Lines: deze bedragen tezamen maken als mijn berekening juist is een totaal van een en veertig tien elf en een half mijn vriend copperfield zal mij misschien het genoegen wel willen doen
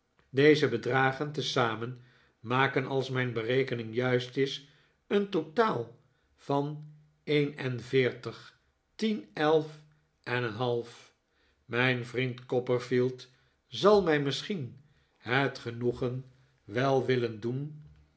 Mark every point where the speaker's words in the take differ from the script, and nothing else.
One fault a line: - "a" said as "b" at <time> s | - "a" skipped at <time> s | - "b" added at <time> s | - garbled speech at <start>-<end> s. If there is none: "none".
none